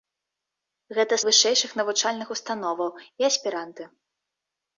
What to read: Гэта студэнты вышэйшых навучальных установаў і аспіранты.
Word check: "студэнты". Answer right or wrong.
wrong